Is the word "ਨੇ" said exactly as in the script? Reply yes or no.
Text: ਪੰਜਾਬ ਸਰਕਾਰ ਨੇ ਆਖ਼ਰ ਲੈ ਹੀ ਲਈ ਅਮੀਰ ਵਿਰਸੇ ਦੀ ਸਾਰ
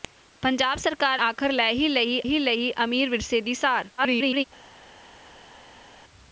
no